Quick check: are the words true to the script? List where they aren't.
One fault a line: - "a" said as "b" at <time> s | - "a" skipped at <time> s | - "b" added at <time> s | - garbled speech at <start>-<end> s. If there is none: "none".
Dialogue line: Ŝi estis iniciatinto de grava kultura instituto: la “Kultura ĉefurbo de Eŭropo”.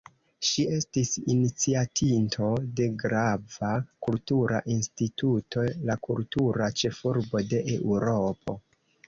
none